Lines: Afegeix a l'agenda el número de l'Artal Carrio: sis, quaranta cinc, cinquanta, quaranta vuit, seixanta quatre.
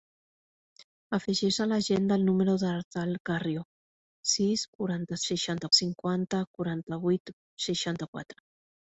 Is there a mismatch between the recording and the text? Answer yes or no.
yes